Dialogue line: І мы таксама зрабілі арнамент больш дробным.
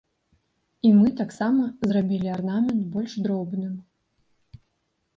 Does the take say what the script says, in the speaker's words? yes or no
yes